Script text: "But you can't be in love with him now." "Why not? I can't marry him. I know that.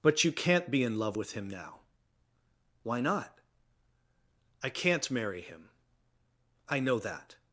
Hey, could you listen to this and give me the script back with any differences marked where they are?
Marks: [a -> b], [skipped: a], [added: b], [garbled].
"But you can't be in love with him now." "Why not? I can't marry him. I know that.